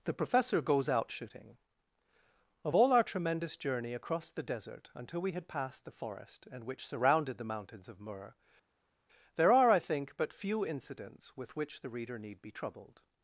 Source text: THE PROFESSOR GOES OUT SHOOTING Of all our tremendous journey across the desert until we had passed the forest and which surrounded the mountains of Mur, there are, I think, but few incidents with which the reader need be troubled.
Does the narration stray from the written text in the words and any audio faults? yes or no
no